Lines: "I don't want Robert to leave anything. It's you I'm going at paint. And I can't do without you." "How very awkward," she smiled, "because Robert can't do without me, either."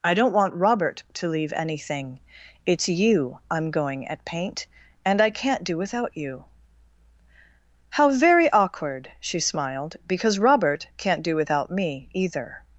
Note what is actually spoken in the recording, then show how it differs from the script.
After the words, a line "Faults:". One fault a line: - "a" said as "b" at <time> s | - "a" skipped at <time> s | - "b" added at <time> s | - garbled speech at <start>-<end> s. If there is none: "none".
"I don't want Robert to leave anything. It's you I'm going at paint. And I can't do without you." "How very awkward," she smiled, "because Robert can't do without me, either."
Faults:
none